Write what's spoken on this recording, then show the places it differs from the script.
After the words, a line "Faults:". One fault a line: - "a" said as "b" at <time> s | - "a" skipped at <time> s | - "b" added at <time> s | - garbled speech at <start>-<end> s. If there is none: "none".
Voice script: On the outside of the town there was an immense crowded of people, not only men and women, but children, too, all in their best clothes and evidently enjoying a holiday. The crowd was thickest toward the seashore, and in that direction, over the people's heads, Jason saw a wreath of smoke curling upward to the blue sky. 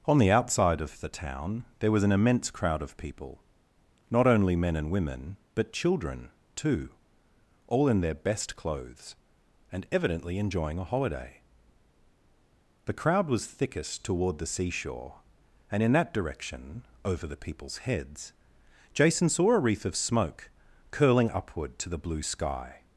On the outside of the town there was an immense crowd of people, not only men and women, but children, too, all in their best clothes and evidently enjoying a holiday. The crowd was thickest toward the seashore, and in that direction, over the people's heads, Jason saw a wreath of smoke curling upward to the blue sky.
Faults:
- "crowded" said as "crowd" at 2.5 s